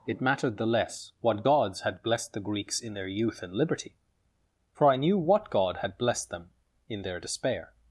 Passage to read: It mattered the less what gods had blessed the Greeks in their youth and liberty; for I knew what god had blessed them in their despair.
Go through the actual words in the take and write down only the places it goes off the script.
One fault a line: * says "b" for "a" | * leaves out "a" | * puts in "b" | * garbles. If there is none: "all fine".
all fine